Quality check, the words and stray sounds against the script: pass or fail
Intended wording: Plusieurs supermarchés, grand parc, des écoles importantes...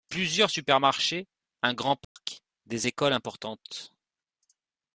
fail